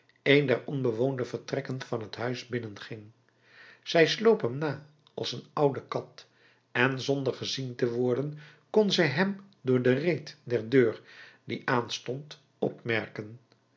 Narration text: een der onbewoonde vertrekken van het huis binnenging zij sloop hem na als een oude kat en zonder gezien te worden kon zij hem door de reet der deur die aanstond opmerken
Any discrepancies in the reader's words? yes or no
no